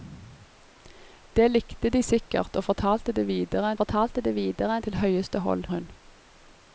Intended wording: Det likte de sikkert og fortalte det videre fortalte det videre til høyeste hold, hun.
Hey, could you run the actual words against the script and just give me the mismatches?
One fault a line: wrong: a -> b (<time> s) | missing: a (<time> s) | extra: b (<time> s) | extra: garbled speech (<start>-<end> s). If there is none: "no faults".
no faults